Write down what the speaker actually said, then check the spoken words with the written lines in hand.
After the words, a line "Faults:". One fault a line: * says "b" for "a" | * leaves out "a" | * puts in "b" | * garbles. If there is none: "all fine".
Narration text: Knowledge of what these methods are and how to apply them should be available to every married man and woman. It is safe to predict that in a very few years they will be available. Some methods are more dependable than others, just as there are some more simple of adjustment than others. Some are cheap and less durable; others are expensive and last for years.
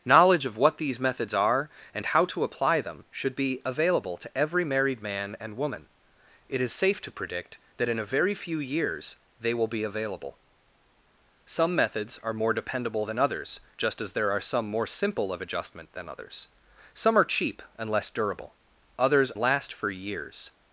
Knowledge of what these methods are and how to apply them should be available to every married man and woman. It is safe to predict that in a very few years they will be available. Some methods are more dependable than others, just as there are some more simple of adjustment than others. Some are cheap and less durable; others last for years.
Faults:
* leaves out "are expensive and"